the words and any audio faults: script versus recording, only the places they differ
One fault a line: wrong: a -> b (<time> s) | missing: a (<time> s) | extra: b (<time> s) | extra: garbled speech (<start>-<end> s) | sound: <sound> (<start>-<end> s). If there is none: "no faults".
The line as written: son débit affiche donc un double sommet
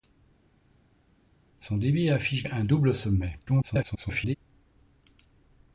missing: donc (2.5 s)
extra: garbled speech (3.5-4.4 s)